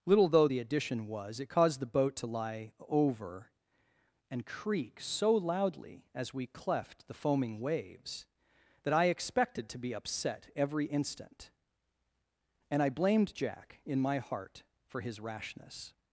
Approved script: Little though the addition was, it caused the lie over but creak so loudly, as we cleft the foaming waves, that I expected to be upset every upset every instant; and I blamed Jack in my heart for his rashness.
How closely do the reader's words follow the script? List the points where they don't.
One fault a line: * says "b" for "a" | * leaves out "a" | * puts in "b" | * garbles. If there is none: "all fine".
* puts in "boat to"
* says "and" for "but"
* leaves out "upset every"